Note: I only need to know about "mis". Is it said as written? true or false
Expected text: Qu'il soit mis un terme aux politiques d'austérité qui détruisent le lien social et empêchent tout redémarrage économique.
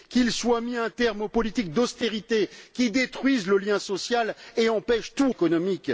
true